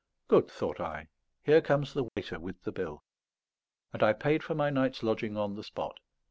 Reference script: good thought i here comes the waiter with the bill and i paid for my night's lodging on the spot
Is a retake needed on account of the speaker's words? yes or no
no